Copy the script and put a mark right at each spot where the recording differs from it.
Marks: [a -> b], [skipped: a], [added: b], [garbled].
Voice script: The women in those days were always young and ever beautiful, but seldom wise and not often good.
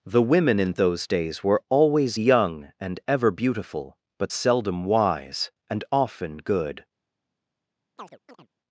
The women in those days were always young and ever beautiful, but seldom wise and [skipped: not] often good.